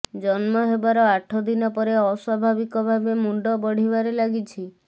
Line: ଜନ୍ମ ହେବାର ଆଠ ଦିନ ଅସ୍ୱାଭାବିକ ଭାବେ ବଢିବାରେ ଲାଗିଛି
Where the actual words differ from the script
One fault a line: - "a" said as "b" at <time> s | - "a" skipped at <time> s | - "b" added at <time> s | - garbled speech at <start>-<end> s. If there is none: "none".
- "ପରେ" added at 1.7 s
- "ମୁଣ୍ଡ" added at 3.2 s